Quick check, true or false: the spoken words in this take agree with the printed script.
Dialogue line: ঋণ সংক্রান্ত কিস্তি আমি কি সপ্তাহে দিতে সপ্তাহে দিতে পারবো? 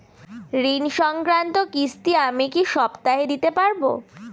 false